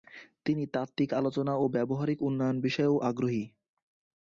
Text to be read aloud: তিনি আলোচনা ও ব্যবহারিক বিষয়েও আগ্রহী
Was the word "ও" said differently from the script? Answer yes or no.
no